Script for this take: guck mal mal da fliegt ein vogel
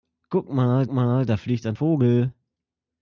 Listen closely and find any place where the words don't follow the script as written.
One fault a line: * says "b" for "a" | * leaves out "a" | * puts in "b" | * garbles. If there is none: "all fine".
all fine